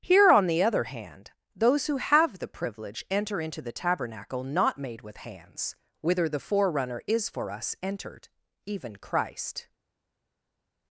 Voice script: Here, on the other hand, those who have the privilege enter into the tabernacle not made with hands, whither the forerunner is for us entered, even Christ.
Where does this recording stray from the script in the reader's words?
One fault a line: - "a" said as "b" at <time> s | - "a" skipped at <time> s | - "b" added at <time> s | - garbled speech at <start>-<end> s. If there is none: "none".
none